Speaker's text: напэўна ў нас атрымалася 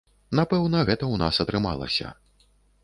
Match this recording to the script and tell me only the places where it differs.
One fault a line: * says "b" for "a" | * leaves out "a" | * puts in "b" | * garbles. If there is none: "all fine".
* puts in "гэта"